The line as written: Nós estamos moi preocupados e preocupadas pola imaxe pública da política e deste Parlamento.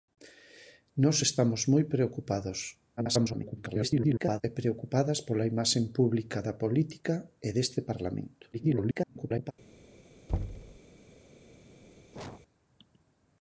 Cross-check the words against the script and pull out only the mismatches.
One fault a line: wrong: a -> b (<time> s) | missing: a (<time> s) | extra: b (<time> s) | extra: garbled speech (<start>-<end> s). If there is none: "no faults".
extra: garbled speech (3.0-4.4 s)
extra: garbled speech (8.5-9.5 s)